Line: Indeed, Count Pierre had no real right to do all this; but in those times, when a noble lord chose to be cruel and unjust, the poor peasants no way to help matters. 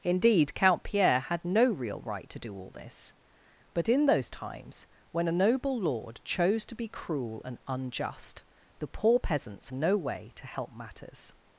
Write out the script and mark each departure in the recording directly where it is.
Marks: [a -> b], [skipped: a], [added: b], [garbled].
Indeed, Count Pierre had no real right to do all this; but in those times, when a noble lord chose to be cruel and unjust, the poor peasants no way to help matters.